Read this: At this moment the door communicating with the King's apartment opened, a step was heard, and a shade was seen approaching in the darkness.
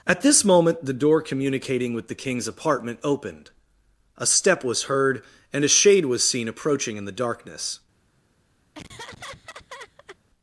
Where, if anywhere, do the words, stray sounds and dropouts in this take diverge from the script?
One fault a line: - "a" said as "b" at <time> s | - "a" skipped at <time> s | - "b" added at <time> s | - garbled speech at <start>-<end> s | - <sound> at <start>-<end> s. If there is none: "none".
- laugh at 8.7-10.2 s